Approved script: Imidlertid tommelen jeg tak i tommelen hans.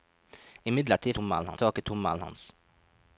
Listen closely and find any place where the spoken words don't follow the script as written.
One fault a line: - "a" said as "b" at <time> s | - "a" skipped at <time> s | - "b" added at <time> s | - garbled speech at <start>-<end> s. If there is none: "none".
none